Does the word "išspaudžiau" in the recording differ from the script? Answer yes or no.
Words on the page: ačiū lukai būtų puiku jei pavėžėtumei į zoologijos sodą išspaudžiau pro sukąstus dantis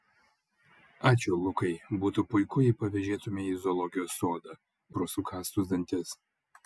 yes